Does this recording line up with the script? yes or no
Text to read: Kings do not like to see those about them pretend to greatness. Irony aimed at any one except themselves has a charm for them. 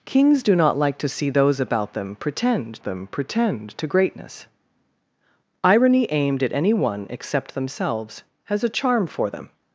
no